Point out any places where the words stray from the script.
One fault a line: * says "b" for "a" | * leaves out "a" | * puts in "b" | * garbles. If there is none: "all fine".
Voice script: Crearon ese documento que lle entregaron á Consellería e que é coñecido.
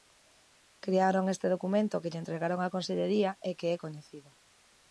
* says "este" for "ese"